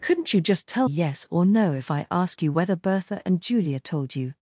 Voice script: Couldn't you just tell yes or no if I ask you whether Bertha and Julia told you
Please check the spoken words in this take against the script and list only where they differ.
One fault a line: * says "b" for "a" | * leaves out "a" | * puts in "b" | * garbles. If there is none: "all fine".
all fine